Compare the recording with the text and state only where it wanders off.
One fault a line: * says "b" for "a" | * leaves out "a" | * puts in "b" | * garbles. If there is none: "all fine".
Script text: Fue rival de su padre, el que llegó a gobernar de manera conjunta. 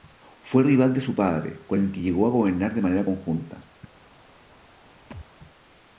* puts in "con"